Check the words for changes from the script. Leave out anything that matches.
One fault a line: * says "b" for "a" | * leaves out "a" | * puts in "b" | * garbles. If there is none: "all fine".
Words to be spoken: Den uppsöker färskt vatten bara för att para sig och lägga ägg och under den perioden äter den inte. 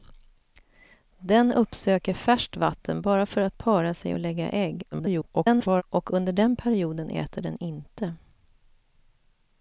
* garbles